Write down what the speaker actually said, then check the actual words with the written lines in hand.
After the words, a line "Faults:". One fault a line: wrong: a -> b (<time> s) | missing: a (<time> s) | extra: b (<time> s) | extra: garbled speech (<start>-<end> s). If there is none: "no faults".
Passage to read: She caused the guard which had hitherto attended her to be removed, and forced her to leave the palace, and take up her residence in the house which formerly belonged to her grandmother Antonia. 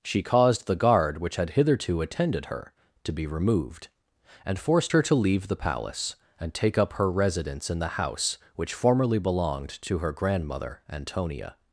She caused the guard which had hitherto attended her to be removed, and forced her to leave the palace, and take up her residence in the house which formerly belonged to her grandmother Antonia.
Faults:
no faults